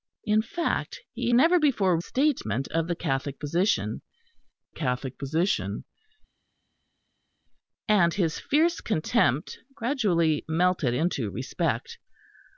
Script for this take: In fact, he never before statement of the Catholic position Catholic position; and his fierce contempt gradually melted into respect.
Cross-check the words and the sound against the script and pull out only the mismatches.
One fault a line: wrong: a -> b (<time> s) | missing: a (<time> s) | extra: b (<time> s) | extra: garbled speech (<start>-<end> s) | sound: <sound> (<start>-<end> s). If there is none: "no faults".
no faults